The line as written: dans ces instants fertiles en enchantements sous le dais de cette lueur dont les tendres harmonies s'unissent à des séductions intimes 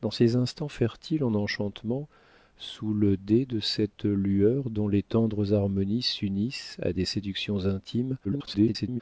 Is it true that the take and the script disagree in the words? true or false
true